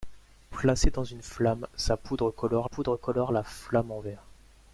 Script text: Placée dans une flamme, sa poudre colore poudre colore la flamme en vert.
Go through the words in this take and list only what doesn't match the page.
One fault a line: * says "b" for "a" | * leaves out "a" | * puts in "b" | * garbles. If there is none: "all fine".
all fine